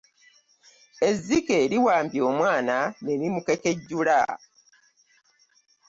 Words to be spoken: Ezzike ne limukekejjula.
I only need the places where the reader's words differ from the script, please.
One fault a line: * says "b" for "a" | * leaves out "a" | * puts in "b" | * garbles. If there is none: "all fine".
* puts in "liwambye omwana"